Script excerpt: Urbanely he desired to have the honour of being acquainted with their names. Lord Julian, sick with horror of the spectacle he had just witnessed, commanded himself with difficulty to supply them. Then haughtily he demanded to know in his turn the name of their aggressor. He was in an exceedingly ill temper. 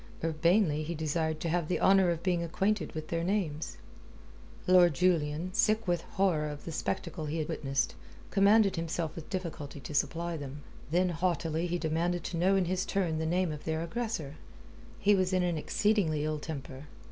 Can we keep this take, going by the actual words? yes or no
no